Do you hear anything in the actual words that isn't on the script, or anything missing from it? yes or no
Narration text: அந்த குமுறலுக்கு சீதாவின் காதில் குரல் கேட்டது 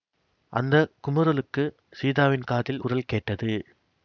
no